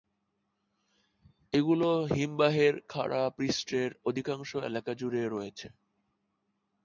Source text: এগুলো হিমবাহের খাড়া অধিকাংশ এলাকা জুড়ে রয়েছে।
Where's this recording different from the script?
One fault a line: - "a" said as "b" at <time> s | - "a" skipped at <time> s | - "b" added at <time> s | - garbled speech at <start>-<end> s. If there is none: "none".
- "পৃষ্ঠের" added at 3.4 s